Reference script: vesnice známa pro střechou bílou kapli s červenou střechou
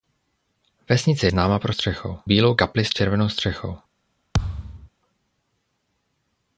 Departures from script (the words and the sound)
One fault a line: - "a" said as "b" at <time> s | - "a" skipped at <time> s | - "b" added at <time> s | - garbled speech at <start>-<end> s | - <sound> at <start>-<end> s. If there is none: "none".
- thud at 4.3-4.9 s